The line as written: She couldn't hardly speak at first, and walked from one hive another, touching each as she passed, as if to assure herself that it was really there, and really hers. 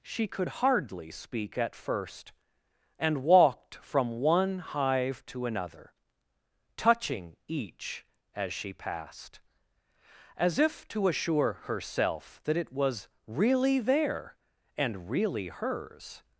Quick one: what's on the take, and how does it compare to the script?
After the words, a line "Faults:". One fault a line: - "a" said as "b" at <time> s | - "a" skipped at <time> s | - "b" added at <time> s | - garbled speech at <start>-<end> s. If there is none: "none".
She could hardly speak at first, and walked from one hive to another, touching each as she passed, as if to assure herself that it was really there, and really hers.
Faults:
- "couldn't" said as "could" at 0.3 s
- "to" added at 5.3 s